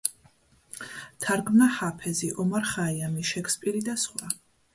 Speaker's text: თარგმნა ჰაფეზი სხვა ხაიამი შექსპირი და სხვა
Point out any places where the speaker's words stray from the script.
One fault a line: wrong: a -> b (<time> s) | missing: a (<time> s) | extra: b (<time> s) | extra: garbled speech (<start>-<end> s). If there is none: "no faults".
wrong: სხვა -> ომარ (2.5 s)